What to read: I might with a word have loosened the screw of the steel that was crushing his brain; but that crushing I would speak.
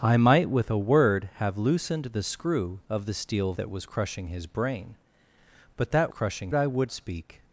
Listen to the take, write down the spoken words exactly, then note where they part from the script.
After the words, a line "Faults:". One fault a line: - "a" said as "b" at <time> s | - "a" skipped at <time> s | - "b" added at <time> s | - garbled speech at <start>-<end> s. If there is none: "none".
I might with a word have loosened the screw of the steel that was crushing his brain; but that crushing I would speak.
Faults:
none